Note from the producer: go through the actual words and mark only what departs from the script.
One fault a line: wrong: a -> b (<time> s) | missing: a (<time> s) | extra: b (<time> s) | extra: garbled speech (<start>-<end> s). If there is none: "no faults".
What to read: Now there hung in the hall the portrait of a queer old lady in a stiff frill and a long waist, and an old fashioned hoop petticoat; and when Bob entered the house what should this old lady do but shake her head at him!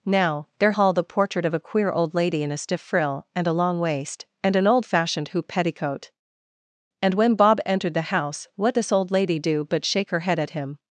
missing: hung in the (0.7 s)
missing: should (8.8 s)